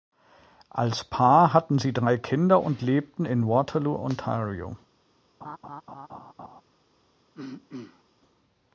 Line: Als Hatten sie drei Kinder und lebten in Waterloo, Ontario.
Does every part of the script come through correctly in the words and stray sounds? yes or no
no